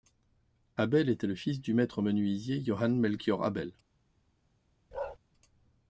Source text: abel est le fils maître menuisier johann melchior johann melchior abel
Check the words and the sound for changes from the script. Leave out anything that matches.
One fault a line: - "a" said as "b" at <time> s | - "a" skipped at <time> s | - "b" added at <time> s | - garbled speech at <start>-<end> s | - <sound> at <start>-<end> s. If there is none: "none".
- "est" said as "était" at 1.1 s
- "du" added at 1.6 s
- "johann melchior" skipped at 3.4 s
- bark at 4.9-5.2 s